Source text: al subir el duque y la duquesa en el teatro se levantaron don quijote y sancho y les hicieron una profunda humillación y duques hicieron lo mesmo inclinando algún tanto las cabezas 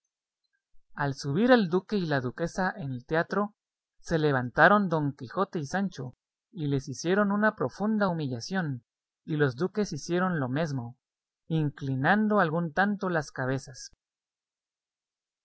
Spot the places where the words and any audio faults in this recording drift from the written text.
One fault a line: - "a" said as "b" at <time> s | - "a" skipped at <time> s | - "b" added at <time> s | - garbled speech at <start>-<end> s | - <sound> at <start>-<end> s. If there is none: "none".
- "los" added at 9.4 s